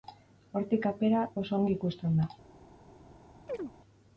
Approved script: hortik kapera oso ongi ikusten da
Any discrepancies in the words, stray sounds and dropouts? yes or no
yes